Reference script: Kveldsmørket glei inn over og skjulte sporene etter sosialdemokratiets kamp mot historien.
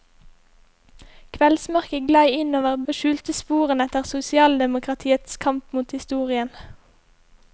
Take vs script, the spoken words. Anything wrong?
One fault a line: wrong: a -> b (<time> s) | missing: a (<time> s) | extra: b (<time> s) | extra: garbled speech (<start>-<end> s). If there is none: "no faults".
no faults